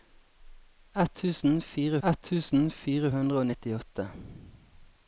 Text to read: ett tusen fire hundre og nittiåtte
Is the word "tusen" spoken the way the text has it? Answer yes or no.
yes